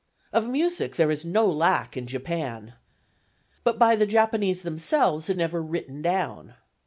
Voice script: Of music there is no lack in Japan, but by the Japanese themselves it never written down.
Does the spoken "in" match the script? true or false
true